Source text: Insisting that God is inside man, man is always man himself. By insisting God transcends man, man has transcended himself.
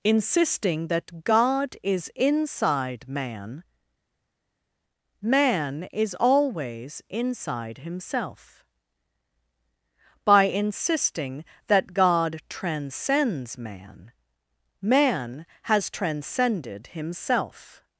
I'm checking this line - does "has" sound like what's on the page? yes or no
yes